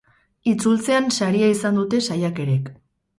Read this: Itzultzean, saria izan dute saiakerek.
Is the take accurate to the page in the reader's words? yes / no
yes